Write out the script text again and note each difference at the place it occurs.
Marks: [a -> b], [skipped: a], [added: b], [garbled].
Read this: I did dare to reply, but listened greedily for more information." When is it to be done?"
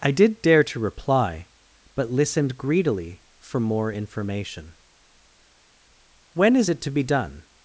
I did dare to reply, but listened greedily for more information." When is it to be done?"